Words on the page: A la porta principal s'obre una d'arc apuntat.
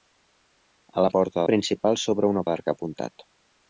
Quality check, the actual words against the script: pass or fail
pass